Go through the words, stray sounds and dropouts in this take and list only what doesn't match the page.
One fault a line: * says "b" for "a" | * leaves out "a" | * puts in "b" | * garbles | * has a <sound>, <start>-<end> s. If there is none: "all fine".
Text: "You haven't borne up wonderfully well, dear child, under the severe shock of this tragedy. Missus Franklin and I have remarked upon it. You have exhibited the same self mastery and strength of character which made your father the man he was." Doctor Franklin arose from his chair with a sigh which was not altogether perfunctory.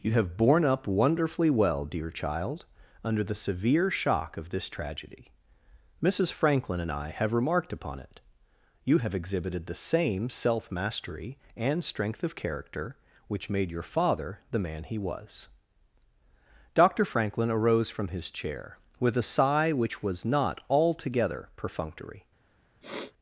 * says "have" for "haven't"
* has a sniff, 22.8-23.1 s